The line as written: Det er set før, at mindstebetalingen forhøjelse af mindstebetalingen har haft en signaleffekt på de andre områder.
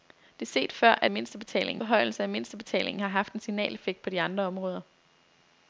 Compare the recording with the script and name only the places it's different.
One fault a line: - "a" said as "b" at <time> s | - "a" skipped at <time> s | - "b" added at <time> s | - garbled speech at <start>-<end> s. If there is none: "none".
none